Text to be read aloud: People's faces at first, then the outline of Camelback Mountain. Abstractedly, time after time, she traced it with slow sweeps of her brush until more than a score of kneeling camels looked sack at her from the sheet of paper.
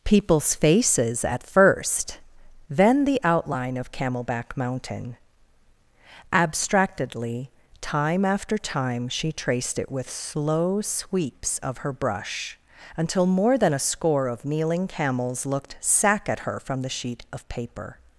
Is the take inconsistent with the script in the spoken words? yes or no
no